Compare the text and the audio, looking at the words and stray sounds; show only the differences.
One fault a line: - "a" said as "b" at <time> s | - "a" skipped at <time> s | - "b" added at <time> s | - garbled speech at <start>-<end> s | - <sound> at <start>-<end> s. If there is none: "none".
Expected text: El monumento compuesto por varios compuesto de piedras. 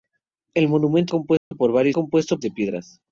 - dropout at 1.4-1.5 s